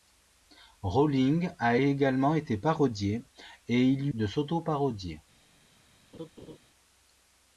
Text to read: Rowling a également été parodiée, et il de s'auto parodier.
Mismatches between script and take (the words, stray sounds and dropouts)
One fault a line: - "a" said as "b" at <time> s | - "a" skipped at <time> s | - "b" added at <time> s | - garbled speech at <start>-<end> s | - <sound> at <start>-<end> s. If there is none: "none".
- laugh at 6.1-6.6 s